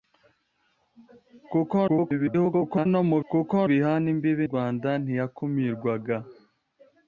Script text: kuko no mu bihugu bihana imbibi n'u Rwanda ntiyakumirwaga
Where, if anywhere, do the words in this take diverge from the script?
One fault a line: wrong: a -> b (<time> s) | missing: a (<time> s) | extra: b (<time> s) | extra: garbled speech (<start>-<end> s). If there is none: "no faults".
extra: garbled speech (1.9-2.9 s)
wrong: bihugu -> kuko (3.3 s)
missing: n'u (4.5 s)